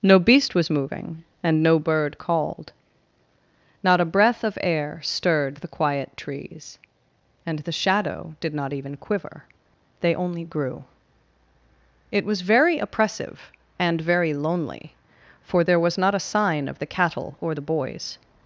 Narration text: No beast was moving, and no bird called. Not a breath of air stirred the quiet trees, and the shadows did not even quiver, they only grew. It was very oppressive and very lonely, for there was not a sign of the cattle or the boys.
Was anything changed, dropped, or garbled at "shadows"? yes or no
yes